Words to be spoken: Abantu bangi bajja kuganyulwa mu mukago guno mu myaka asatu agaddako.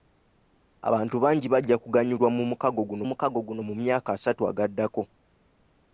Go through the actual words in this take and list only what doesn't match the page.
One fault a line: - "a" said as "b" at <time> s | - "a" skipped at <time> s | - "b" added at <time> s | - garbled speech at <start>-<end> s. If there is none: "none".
- "mukago guno" added at 3.1 s